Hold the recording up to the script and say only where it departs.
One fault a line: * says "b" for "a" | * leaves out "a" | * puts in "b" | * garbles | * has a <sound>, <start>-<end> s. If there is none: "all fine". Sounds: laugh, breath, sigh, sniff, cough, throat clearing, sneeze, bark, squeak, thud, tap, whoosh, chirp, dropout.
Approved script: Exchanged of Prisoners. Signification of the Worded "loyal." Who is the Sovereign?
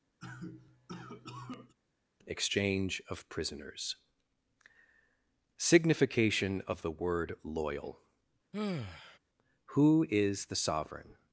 * has a cough, 0.2-1.7 s
* says "Exchange" for "Exchanged"
* says "Word" for "Worded"
* has a sigh, 8.5-9.2 s